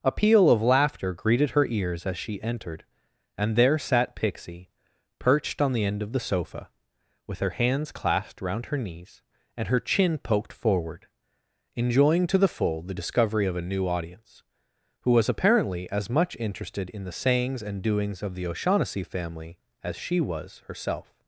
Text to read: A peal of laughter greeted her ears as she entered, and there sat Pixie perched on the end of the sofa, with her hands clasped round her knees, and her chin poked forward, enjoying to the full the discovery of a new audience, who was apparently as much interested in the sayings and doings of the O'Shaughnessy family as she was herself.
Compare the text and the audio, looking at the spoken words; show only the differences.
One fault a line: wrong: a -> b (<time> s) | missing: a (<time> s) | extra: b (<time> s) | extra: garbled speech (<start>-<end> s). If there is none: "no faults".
no faults